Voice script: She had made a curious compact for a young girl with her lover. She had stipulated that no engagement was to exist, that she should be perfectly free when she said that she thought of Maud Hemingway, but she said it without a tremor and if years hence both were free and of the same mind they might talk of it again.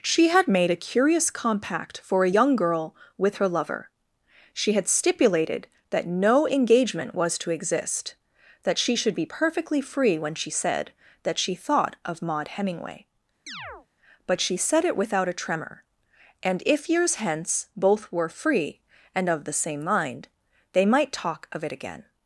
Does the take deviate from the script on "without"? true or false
false